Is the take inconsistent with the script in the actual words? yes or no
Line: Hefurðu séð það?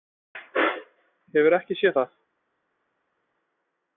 yes